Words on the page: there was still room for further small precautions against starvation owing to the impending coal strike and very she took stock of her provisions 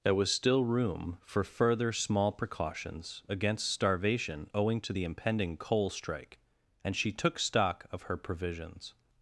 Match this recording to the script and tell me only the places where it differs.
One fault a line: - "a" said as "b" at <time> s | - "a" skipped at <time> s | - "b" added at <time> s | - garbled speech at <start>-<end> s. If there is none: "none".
- "very" skipped at 7.0 s